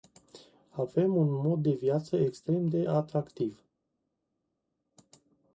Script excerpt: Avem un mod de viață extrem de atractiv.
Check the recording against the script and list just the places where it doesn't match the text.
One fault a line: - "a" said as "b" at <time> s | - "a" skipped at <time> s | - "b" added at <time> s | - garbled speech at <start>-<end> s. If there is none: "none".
none